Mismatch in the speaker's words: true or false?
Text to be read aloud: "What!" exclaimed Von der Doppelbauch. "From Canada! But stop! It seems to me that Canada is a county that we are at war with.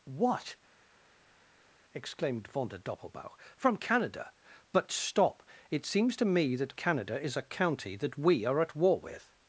false